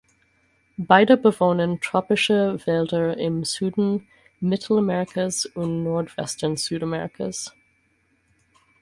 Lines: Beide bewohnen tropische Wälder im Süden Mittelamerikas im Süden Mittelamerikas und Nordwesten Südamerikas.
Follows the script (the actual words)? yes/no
no